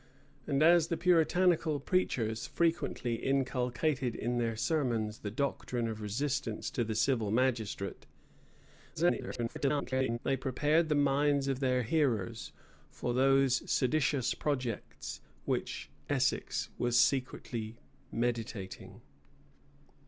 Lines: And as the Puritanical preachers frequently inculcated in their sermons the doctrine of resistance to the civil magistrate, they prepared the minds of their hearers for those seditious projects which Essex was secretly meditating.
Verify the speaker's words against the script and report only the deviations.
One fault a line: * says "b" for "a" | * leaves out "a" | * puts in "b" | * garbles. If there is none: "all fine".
* garbles